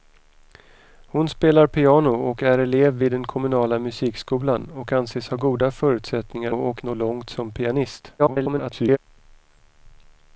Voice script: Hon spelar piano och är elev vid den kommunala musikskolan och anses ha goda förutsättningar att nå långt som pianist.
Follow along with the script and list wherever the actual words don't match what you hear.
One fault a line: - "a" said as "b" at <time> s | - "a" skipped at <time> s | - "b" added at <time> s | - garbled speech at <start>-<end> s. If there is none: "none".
- "att" said as "och" at 6.5 s
- garbled speech at 8.2-9.0 s